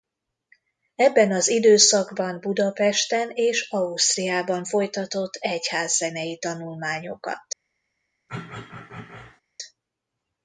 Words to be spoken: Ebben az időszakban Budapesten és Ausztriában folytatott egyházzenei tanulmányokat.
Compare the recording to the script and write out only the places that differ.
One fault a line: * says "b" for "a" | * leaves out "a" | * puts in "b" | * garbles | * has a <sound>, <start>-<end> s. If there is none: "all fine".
* has a throat clearing, 8.3-9.4 s